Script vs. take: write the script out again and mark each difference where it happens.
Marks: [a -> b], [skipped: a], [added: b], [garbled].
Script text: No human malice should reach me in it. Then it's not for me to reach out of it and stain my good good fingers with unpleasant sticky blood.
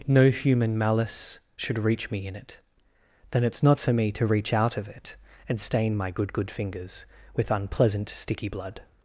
No human malice should reach me in it. Then it's not for me to reach out of it and stain my good good fingers with unpleasant sticky blood.